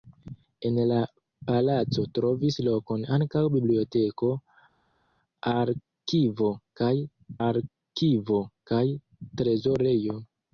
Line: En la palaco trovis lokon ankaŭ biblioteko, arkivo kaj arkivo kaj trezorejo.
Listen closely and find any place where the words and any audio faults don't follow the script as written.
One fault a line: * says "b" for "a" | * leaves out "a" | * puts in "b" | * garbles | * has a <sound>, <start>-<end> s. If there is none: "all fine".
all fine